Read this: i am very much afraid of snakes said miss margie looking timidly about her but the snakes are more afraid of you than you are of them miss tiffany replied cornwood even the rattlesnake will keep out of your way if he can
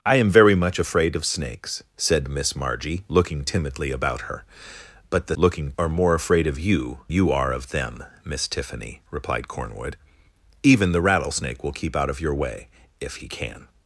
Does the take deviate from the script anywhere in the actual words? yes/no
yes